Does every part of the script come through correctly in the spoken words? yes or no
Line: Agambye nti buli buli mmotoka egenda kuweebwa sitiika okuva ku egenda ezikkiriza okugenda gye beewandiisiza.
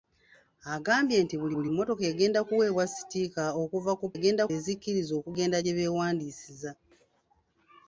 yes